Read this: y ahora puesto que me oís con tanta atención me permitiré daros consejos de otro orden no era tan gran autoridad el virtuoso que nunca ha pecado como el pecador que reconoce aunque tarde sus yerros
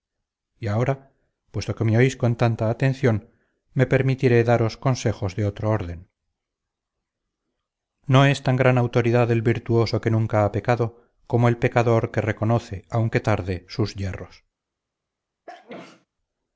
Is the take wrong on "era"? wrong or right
wrong